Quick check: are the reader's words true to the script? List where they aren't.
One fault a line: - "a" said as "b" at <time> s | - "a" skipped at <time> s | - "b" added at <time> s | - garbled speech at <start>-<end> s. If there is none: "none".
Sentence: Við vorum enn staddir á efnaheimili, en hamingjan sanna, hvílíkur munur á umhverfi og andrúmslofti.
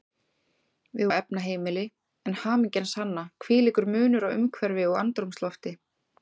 - "vorum enn staddir" skipped at 1.1 s